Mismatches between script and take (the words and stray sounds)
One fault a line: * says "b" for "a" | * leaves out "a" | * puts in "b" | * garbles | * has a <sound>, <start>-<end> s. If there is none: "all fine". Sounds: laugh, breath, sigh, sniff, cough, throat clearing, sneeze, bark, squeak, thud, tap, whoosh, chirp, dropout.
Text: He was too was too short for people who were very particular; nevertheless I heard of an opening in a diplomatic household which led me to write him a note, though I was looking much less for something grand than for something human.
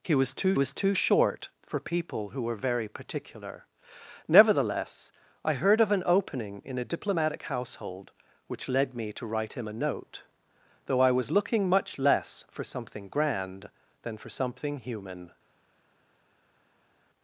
all fine